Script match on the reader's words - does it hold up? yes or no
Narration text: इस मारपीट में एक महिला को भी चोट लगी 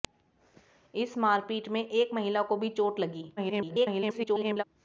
no